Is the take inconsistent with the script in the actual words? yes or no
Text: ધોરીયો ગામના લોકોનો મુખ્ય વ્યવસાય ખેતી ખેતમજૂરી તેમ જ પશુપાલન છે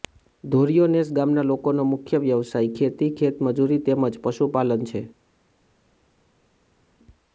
yes